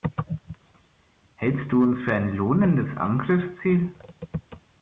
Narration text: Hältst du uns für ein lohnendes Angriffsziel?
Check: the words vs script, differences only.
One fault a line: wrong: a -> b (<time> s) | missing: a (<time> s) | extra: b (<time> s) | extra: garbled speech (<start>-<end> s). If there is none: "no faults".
no faults